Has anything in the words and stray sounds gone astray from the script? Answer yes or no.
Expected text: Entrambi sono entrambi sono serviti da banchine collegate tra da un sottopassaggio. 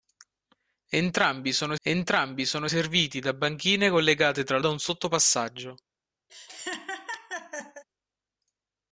yes